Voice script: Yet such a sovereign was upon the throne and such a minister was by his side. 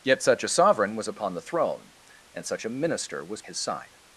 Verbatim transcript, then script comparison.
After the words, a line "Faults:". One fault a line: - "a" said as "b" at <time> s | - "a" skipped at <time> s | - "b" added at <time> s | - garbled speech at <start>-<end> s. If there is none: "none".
Yet such a sovereign was upon the throne and such a minister was his side.
Faults:
- "by" skipped at 3.4 s